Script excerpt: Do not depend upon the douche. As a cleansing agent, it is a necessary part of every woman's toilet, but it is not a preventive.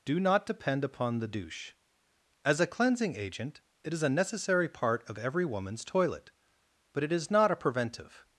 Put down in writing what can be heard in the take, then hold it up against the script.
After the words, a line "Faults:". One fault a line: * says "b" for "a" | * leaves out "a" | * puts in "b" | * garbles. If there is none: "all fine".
Do not depend upon the douche. As a cleansing agent, it is a necessary part of every woman's toilet, but it is not a preventive.
Faults:
all fine